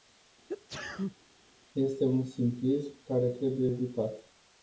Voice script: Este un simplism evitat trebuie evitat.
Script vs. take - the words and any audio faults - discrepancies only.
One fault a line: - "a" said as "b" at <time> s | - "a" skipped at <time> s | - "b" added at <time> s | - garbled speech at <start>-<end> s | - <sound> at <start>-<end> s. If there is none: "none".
- sneeze at 0.5-1.2 s
- "evitat" said as "care" at 3.1 s